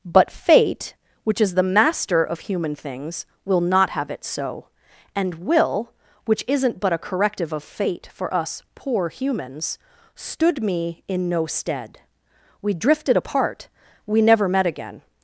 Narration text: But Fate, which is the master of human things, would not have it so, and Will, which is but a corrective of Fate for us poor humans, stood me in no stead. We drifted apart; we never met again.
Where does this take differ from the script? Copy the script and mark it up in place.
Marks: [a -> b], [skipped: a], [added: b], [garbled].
But Fate, which is the master of human things, [would -> will] not have it so, and Will, which [is -> isn't] but a corrective of Fate for us poor humans, stood me in no stead. We drifted apart; we never met again.